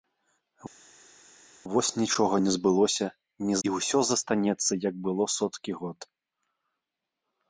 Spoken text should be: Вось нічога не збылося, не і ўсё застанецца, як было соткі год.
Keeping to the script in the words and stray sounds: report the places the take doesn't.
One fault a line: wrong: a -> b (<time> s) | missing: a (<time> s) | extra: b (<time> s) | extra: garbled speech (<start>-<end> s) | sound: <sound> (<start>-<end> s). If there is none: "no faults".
no faults